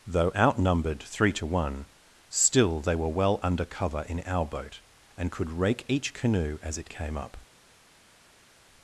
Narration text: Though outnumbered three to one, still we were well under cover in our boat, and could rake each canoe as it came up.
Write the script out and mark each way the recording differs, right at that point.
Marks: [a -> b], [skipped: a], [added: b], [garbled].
Though outnumbered three to one, still [we -> they] were well under cover in our boat, and could rake each canoe as it came up.